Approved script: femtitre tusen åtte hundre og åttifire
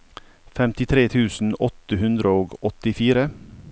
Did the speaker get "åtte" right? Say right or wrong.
right